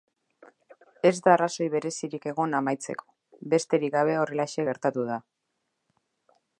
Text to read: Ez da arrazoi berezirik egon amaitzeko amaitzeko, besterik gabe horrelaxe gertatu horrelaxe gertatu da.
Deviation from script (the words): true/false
true